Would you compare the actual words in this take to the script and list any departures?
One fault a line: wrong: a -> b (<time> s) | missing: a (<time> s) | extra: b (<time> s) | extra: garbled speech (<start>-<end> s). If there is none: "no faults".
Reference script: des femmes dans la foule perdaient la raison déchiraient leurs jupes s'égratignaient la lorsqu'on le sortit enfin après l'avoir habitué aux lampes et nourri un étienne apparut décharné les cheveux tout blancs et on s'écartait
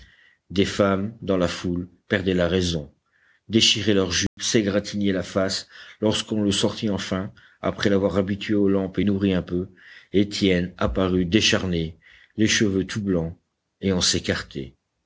extra: face (5.2 s)
extra: peu (9.4 s)